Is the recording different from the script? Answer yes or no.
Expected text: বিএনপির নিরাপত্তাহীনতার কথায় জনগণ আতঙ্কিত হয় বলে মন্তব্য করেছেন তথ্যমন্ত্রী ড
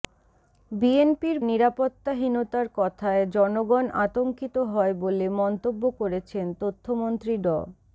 no